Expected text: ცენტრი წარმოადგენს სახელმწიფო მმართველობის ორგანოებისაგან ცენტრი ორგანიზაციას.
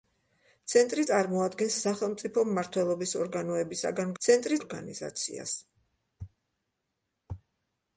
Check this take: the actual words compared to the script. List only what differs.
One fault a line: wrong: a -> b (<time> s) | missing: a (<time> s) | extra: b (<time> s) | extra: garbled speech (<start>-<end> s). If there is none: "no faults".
no faults